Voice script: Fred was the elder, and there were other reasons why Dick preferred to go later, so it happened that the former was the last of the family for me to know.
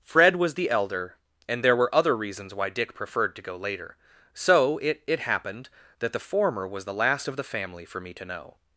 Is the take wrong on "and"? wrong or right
right